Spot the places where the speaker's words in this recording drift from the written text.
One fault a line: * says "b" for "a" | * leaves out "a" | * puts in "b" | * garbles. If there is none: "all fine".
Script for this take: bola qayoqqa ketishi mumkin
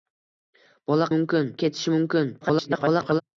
* says "mumkin" for "qayoqqa"
* garbles